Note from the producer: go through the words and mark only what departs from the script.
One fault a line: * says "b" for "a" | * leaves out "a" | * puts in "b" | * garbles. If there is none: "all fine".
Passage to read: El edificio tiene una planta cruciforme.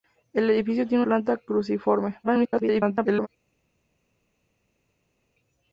* leaves out "una"
* garbles